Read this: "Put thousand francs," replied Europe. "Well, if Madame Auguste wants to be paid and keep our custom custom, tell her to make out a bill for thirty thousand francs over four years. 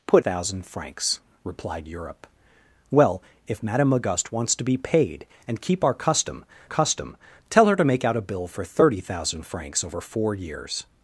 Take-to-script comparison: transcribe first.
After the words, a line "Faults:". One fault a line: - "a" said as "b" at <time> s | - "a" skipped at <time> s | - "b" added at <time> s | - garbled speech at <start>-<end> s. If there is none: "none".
"Put thousand francs," replied Europe. "Well, if Madame Auguste wants to be paid and keep our custom custom, tell her to make out a bill for thirty thousand francs over four years.
Faults:
none